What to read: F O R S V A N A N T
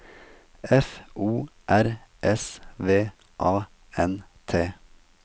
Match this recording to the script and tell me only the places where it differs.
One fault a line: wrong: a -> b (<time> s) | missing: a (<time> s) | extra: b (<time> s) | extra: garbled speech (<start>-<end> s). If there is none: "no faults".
missing: A N (4.2 s)